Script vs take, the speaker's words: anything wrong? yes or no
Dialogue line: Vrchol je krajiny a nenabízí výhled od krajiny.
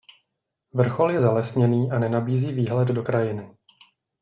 yes